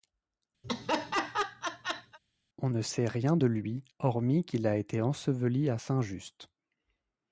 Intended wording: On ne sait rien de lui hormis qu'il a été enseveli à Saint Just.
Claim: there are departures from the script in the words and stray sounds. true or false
true